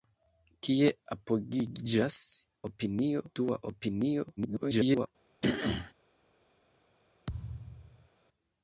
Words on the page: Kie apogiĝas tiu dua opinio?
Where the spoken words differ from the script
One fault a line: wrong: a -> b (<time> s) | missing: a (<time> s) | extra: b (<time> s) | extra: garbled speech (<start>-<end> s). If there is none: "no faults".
wrong: tiu -> opinio (2.7 s)
extra: garbled speech (4.4-5.1 s)